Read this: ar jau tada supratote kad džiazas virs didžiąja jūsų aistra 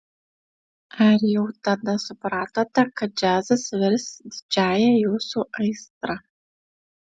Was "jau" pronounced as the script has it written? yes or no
yes